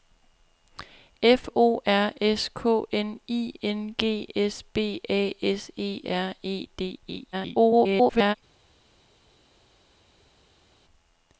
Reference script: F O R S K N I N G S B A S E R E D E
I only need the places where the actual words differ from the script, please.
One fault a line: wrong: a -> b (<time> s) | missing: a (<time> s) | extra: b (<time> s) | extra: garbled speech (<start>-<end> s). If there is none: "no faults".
extra: garbled speech (7.3-8.4 s)